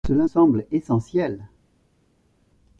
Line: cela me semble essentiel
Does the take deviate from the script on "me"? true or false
true